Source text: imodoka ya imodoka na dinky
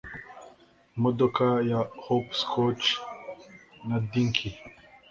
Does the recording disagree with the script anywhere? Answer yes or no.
yes